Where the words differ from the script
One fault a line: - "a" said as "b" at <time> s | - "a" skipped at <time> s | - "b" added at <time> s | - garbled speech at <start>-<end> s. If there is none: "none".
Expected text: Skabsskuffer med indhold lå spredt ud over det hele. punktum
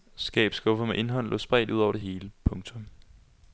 none